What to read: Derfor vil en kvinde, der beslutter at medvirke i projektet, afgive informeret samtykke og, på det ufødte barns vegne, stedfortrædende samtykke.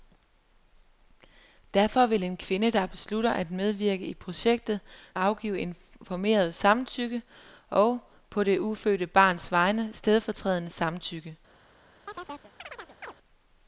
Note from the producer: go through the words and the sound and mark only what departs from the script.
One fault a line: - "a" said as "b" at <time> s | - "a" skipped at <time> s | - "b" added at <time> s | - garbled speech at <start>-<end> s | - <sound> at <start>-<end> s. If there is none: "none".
- chirp at 12.1-13.1 s